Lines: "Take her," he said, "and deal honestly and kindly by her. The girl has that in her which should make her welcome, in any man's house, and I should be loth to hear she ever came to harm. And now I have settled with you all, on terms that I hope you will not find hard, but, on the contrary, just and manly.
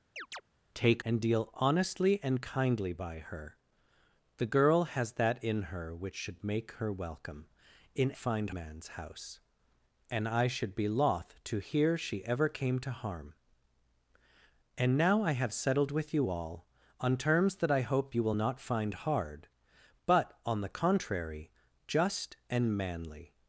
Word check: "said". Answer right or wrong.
wrong